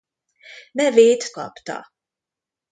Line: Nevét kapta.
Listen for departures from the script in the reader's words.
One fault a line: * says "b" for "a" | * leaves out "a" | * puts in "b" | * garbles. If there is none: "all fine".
all fine